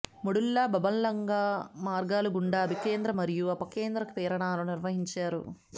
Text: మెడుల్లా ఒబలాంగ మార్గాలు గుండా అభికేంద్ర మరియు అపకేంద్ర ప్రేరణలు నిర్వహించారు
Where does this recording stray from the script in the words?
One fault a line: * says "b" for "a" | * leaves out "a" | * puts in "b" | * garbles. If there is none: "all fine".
all fine